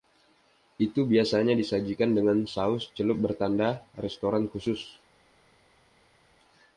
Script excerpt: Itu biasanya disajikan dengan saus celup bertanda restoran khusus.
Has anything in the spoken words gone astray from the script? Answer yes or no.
no